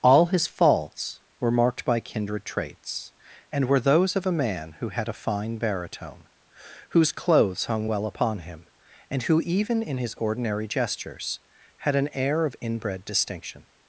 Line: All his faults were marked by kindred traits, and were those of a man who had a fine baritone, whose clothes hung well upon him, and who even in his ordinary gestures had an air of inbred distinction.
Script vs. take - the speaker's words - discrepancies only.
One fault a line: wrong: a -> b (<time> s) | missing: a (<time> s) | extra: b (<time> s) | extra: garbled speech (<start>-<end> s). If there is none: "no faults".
no faults